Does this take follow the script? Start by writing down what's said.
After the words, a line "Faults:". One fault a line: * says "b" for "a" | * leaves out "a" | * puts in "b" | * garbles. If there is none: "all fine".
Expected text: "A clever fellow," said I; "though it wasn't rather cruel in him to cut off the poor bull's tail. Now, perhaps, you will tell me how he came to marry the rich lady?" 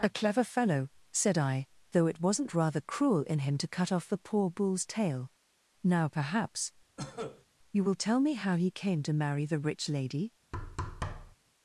"A clever fellow," said I; "though it wasn't rather cruel in him to cut off the poor bull's tail. Now, perhaps, you will tell me how he came to marry the rich lady?"
Faults:
all fine